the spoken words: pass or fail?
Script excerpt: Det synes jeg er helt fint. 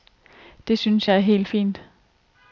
pass